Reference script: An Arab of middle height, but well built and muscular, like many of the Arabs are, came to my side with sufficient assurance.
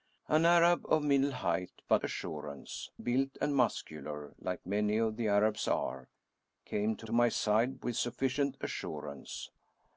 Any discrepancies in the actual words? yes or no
yes